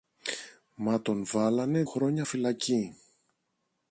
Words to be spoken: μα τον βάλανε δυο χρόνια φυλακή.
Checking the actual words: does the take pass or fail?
fail